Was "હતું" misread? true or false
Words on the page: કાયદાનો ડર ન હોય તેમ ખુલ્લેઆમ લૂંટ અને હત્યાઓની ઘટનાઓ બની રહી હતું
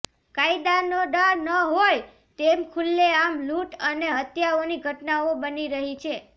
true